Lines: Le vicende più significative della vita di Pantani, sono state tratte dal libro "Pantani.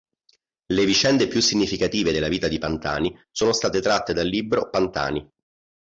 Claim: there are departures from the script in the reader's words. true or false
false